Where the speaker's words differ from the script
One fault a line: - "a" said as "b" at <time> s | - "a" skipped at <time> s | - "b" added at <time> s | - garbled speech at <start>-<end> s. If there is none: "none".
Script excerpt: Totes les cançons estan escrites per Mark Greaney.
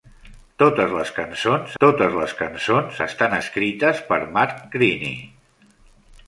- "totes les cançons" added at 1.8 s